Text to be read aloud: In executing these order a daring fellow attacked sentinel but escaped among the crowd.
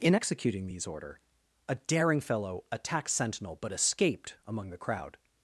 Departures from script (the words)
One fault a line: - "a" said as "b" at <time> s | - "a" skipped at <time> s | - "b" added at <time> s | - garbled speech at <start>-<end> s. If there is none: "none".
none